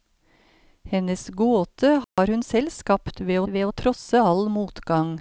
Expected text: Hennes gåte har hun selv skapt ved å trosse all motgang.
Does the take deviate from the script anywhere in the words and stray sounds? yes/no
yes